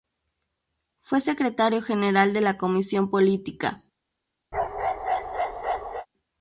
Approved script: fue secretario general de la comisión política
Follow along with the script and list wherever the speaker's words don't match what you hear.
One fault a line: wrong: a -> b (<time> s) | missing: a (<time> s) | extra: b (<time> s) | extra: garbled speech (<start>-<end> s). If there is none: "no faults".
no faults